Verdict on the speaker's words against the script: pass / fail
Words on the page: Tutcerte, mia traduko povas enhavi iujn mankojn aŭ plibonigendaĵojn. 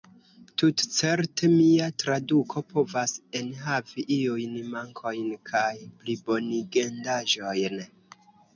fail